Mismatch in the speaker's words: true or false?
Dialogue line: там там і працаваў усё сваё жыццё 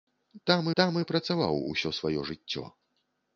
false